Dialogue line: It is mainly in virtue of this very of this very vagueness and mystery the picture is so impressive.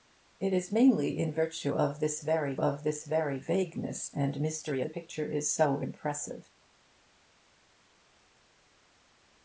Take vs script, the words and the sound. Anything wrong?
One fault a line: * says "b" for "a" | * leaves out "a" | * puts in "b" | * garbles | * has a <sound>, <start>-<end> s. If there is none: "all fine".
all fine